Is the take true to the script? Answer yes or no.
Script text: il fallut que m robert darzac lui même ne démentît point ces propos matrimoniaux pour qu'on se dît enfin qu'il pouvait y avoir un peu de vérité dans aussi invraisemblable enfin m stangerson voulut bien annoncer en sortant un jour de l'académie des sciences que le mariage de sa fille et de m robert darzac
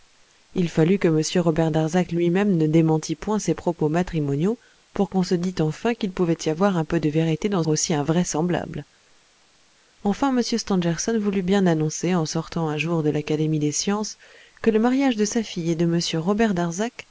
yes